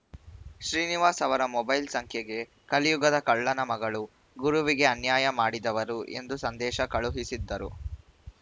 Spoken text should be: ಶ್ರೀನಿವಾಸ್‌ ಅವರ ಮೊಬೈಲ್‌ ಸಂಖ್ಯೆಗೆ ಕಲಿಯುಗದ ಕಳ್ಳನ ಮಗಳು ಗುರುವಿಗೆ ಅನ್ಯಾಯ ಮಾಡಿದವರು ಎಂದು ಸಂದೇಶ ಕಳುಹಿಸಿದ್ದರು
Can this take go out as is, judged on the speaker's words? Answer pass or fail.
pass